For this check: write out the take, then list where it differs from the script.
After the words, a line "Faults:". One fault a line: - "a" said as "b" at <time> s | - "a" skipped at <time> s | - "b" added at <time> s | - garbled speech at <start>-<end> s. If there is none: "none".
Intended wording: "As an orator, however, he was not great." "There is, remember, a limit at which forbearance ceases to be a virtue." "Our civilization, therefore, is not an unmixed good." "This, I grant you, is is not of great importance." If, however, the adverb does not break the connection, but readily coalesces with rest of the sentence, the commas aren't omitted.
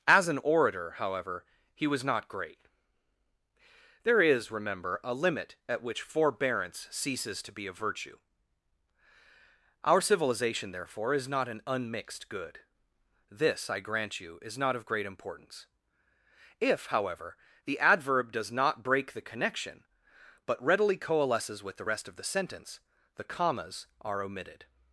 "As an orator, however, he was not great." "There is, remember, a limit at which forbearance ceases to be a virtue." "Our civilization, therefore, is not an unmixed good." "This, I grant you, is not of great importance." If, however, the adverb does not break the connection, but readily coalesces with the rest of the sentence, the commas are omitted.
Faults:
- "is" skipped at 14.6 s
- "the" added at 21.8 s
- "aren't" said as "are" at 24.0 s